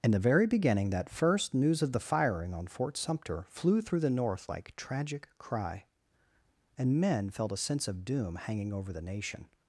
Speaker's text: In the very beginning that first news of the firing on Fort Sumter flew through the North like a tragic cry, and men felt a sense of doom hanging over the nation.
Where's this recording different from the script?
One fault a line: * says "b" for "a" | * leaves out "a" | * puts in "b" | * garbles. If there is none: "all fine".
* leaves out "a"